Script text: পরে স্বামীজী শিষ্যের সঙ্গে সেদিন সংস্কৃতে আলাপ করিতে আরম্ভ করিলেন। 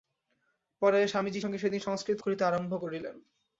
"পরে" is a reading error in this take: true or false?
false